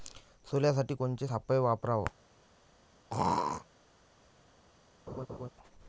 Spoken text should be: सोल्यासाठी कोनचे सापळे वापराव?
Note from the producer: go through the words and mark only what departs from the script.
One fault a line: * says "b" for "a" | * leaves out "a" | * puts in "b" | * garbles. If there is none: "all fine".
all fine